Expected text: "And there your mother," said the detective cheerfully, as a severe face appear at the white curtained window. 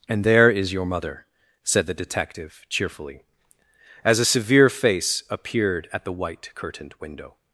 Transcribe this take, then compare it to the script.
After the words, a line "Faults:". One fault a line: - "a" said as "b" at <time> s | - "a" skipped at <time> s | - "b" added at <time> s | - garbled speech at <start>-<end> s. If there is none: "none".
"And there is your mother," said the detective cheerfully, as a severe face appeared at the white curtained window.
Faults:
- "is" added at 0.5 s
- "appear" said as "appeared" at 5.3 s